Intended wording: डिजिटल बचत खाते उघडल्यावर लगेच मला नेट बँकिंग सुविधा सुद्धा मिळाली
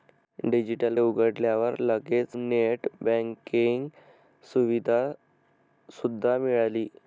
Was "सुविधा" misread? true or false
false